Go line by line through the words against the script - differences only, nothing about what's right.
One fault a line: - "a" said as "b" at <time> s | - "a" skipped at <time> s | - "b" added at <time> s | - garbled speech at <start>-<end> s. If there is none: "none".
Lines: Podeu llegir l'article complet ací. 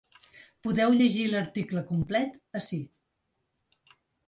none